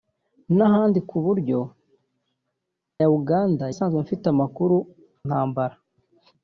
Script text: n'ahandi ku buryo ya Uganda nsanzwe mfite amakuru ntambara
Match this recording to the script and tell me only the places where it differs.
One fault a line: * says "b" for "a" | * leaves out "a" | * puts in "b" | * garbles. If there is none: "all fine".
all fine